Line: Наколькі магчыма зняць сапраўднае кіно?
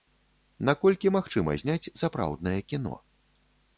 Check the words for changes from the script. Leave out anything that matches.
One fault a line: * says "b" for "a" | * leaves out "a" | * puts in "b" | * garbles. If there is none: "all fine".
all fine